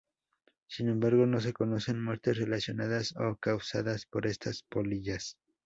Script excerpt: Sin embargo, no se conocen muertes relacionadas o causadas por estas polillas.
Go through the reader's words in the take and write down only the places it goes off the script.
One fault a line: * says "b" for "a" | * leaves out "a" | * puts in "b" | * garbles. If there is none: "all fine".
all fine